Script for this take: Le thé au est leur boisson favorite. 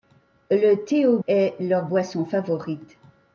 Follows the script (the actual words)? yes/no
yes